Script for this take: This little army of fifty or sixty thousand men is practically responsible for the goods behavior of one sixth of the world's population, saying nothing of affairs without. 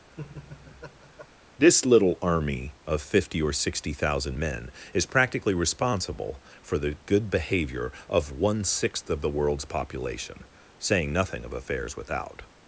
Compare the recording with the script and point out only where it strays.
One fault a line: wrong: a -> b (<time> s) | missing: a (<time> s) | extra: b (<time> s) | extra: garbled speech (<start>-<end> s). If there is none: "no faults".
wrong: goods -> good (7.1 s)